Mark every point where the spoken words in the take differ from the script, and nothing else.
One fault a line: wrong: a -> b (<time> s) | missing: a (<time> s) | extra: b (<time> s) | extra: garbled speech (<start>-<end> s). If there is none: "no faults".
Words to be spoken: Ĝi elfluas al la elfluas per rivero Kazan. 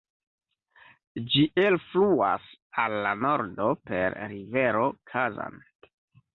wrong: elfluas -> nordo (3.2 s)